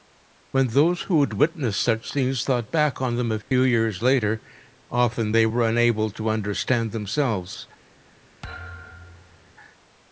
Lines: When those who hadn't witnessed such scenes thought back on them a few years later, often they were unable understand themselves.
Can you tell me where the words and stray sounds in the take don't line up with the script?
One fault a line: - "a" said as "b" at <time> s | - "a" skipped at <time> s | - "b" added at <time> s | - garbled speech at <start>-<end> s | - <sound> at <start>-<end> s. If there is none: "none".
- "hadn't" said as "had" at 1.2 s
- dropout at 3.4-3.5 s
- "to" added at 6.1 s
- thud at 8.4-9.5 s